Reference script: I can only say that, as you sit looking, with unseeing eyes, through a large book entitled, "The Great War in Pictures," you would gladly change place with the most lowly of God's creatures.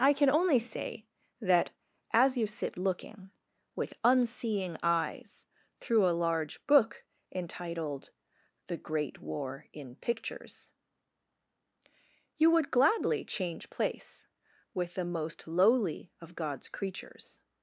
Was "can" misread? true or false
false